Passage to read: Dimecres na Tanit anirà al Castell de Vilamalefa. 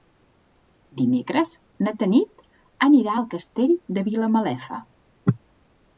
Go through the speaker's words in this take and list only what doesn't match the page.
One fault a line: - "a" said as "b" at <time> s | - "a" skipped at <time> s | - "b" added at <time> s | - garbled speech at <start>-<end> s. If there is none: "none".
none